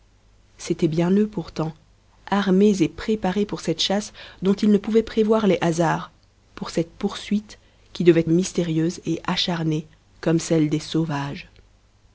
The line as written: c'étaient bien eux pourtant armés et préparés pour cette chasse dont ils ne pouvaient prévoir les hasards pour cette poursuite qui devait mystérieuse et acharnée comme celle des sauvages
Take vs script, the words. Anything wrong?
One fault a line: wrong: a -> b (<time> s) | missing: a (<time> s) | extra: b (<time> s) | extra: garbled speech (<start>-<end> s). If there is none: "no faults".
no faults